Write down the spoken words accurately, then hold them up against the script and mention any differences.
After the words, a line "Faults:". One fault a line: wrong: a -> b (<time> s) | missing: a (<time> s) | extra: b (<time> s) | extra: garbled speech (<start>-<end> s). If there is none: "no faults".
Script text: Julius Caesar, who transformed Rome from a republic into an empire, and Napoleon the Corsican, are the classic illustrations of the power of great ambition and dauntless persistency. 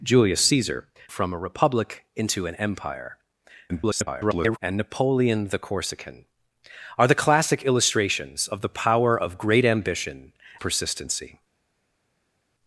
Julius Caesar, from a republic into an empire, [garbled] and Napoleon the Corsican, are the classic illustrations of the power of great ambition persistency.
Faults:
missing: who transformed Rome (0.9 s)
extra: garbled speech (3.7-4.6 s)
missing: and dauntless (10.3 s)